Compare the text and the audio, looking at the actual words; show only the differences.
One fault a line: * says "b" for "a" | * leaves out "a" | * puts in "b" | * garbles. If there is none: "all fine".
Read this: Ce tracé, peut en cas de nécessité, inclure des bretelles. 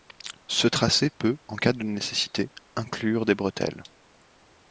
all fine